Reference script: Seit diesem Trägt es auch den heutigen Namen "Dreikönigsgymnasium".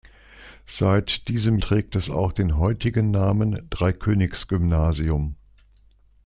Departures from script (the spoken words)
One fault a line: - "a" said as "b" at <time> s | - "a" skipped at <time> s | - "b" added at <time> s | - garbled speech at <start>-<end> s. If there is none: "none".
none